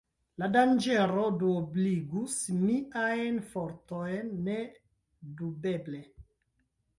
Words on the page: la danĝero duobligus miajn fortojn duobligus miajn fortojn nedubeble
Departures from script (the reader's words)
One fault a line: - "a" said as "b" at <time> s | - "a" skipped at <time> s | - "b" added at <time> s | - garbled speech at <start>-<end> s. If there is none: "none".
- "duobligus miajn fortojn" skipped at 4.3 s